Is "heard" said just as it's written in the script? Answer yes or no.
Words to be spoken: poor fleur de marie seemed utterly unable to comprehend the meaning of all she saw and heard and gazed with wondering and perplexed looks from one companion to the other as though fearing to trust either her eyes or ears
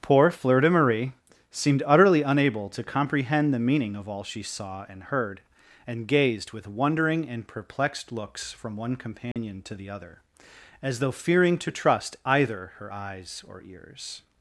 yes